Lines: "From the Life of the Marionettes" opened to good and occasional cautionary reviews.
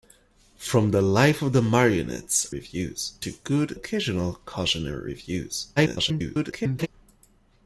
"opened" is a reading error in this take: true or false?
true